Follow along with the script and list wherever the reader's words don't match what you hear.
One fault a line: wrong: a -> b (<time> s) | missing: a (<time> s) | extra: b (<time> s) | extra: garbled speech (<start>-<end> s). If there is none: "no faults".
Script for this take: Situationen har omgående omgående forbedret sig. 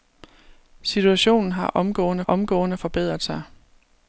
no faults